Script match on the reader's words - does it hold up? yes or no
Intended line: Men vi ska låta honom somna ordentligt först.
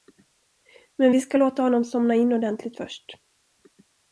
no